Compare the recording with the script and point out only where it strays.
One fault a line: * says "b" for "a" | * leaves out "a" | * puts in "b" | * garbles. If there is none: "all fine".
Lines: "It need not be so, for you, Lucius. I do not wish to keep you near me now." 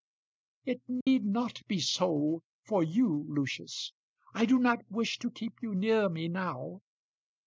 all fine